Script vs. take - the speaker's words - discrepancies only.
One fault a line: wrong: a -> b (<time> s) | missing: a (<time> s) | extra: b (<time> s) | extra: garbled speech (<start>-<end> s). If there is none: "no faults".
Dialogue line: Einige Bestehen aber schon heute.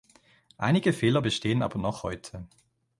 extra: Fehler (0.9 s)
wrong: schon -> noch (1.8 s)